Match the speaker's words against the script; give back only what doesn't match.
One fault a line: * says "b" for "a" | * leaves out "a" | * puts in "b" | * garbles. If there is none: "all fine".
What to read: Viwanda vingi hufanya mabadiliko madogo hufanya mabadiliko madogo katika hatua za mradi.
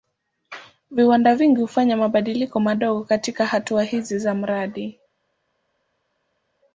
* leaves out "hufanya mabadiliko madogo"
* puts in "hizi"